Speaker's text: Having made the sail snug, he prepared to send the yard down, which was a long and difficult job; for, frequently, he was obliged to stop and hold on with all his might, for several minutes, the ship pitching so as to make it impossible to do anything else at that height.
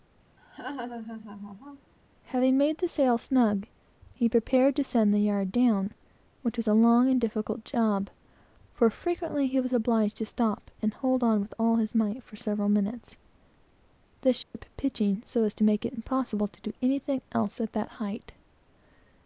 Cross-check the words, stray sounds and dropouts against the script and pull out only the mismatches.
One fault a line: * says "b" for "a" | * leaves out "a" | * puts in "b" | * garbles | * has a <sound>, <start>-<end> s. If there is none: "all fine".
* has a laugh, 0.4-1.9 s
* has a dropout, 14.4-14.5 s